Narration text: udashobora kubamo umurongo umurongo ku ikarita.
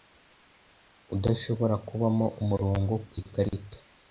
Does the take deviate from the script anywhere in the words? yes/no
yes